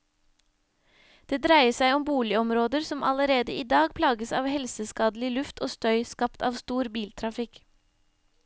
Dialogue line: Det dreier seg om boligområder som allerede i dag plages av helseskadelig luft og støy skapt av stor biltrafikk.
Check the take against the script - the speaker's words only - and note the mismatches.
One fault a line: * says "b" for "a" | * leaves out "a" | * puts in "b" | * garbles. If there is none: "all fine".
all fine